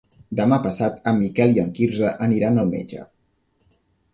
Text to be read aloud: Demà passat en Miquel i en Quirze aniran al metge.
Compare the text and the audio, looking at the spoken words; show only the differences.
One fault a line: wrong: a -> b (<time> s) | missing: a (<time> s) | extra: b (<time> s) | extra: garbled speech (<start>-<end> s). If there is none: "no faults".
no faults